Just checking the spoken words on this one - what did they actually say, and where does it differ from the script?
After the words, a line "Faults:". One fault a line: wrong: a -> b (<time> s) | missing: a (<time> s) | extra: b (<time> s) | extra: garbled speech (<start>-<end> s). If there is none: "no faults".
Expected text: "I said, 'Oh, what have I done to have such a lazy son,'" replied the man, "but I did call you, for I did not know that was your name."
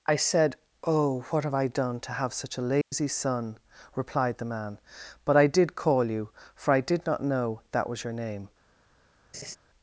"I said, 'Oh, what have I done to have such a lazy son,'" replied the man, "but I did call you, for I did not know that was your name."
Faults:
no faults